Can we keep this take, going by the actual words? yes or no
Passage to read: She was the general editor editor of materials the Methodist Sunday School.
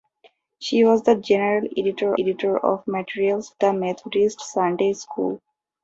yes